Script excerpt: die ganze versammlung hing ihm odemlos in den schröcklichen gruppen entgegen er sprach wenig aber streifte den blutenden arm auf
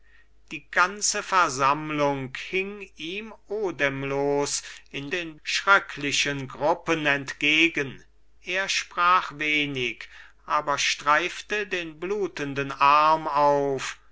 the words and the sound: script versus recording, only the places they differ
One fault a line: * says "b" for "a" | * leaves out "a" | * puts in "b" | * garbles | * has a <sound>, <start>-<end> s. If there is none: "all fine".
all fine